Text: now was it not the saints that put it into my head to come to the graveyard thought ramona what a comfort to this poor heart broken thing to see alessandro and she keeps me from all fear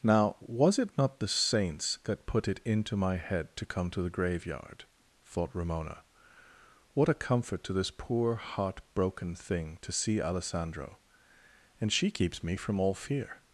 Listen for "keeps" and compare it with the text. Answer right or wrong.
right